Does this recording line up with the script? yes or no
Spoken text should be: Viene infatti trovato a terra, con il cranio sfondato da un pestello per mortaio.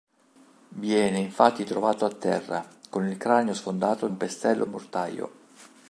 no